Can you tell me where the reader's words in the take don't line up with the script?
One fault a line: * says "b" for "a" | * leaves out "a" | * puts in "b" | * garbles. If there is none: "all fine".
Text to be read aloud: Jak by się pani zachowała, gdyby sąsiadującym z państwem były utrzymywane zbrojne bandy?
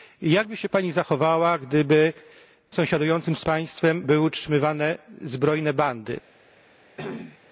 all fine